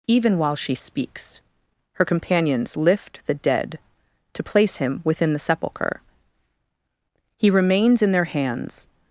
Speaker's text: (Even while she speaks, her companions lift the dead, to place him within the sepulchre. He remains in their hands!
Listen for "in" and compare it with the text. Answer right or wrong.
right